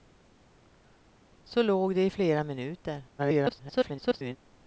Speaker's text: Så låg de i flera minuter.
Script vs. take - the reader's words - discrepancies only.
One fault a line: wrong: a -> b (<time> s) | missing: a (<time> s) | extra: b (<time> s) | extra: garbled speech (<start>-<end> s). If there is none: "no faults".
extra: garbled speech (3.2-4.4 s)